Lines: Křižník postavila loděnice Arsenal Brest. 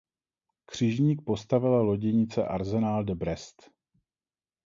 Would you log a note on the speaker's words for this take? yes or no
yes